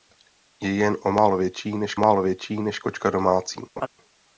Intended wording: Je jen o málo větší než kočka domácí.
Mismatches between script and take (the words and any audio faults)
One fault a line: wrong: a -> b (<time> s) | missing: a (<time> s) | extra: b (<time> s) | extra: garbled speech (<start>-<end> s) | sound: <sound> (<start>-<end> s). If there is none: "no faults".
extra: málo větší než (2.0 s)
sound: laugh (3.8-3.9 s)